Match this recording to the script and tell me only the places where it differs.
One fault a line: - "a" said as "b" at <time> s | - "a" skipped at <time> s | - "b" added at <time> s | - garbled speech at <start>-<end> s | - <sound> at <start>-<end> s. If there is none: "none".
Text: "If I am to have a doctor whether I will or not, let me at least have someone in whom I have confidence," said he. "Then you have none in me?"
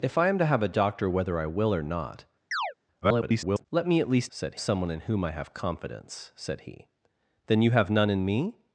- chirp at 2.5-2.7 s
- garbled speech at 3.0-3.7 s
- "have" said as "said" at 4.3 s